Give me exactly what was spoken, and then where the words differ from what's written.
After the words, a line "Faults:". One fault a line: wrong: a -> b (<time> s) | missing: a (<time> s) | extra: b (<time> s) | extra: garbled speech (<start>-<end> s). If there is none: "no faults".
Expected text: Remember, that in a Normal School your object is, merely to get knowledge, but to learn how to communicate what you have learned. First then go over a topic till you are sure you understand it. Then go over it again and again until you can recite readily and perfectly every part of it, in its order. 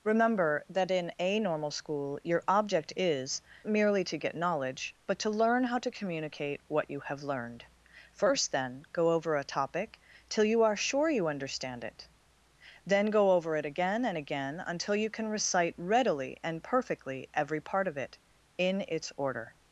Remember, that in a Normal School your object is, merely to get knowledge, but to learn how to communicate what you have learned. First then go over a topic till you are sure you understand it. Then go over it again and again until you can recite readily and perfectly every part of it, in its order.
Faults:
no faults